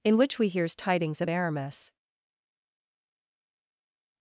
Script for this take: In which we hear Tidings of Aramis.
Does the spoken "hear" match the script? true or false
false